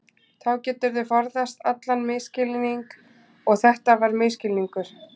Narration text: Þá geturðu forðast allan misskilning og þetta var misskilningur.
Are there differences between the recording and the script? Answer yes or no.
no